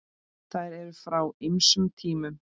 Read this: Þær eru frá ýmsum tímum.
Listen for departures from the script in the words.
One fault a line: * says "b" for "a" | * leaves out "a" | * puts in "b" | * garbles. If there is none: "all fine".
all fine